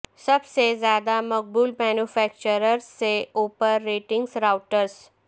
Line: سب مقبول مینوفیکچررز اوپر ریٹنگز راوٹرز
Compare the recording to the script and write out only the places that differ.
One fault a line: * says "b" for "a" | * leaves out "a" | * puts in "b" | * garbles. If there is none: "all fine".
* puts in "سے زیادہ"
* puts in "سے"